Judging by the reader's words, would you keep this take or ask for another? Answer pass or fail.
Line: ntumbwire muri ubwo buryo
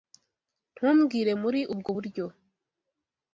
pass